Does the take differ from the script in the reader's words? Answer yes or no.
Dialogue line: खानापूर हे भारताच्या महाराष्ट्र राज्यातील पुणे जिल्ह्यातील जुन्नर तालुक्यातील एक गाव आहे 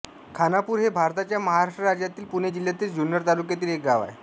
no